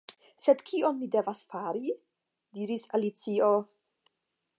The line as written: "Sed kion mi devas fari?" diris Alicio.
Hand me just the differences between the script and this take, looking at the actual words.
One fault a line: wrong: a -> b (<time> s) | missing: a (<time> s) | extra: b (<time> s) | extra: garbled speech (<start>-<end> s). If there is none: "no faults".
no faults